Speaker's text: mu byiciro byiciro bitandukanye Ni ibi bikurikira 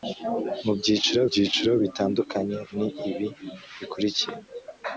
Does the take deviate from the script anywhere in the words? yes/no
no